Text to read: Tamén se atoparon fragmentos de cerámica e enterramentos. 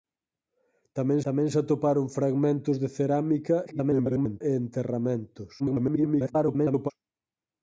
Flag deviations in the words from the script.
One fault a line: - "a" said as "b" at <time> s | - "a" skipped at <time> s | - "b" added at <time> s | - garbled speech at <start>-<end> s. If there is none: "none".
- "tamén" added at 1.3 s
- garbled speech at 3.7-4.4 s
- garbled speech at 5.6-6.9 s